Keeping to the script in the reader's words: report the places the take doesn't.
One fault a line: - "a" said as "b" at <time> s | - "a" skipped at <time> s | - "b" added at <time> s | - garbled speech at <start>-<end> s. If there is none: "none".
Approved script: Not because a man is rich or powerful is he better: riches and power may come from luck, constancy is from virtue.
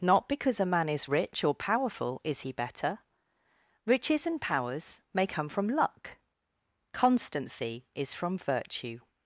- "power" said as "powers" at 4.4 s